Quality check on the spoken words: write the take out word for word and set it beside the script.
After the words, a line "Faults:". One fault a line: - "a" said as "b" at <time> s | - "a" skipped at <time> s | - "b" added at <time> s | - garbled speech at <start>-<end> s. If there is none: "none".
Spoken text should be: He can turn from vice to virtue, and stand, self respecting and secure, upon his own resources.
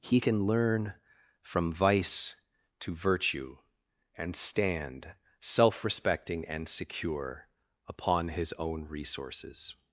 He can learn from vice to virtue, and stand, self respecting and secure, upon his own resources.
Faults:
- "turn" said as "learn" at 0.5 s